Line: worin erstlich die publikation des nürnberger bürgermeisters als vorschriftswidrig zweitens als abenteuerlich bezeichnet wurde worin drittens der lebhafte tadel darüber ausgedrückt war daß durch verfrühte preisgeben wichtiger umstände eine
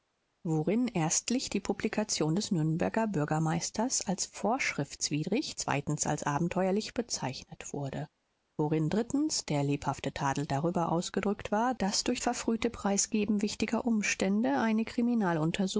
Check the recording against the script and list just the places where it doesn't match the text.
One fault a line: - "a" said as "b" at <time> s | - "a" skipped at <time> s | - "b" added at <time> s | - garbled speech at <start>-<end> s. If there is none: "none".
none